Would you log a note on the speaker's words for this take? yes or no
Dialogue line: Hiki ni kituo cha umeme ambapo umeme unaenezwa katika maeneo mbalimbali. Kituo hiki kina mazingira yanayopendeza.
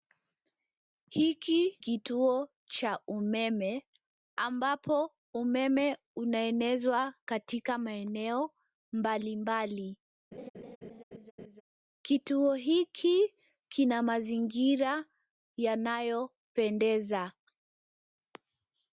yes